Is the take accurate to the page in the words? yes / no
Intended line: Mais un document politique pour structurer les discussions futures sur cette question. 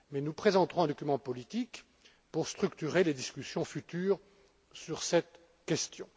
no